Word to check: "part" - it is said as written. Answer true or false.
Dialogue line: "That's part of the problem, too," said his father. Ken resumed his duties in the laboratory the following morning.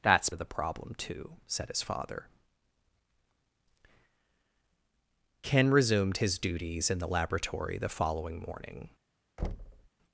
false